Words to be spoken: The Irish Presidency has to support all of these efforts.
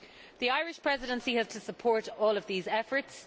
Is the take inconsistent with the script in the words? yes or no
no